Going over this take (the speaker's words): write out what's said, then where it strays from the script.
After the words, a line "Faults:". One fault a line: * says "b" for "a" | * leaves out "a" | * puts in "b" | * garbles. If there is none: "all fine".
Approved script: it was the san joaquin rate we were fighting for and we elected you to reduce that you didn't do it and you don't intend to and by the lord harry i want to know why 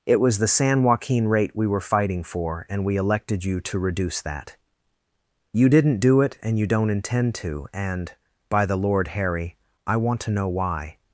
it was the san joaquin rate we were fighting for and we elected you to reduce that you didn't do it and you don't intend to and by the lord harry i want to know why
Faults:
all fine